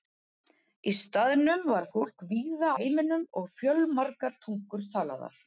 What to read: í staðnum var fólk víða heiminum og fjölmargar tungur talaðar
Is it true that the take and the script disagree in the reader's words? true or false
false